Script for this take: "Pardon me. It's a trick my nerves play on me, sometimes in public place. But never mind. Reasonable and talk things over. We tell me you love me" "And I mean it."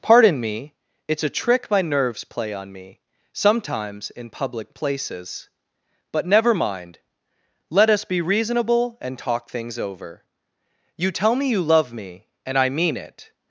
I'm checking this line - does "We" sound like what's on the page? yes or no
no